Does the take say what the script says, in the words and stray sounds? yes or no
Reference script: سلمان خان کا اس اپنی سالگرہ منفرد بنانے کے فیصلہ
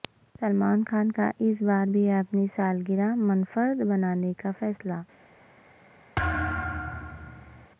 no